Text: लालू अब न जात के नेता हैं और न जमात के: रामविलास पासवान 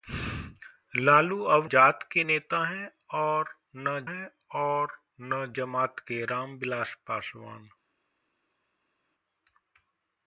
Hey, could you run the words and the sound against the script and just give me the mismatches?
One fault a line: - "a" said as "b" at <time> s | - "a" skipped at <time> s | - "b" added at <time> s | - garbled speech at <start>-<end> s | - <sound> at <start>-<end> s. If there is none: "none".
- "न" skipped at 1.6 s
- "हैं और न" added at 4.1 s